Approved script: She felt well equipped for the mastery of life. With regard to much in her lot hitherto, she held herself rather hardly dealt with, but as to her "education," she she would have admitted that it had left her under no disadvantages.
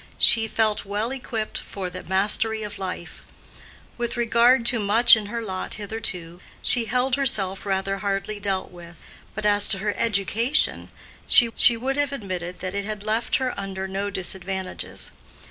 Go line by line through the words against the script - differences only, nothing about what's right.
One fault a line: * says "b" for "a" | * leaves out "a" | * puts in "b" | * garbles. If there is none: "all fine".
all fine